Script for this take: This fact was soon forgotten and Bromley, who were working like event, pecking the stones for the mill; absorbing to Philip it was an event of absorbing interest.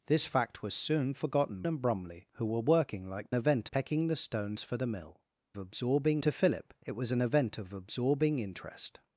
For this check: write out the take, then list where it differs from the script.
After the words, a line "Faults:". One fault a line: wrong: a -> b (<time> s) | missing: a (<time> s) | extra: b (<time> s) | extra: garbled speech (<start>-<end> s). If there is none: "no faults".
This fact was soon forgotten and Bromley, who were working like event, pecking the stones for the mill; absorbing to Philip it was an event of absorbing interest.
Faults:
no faults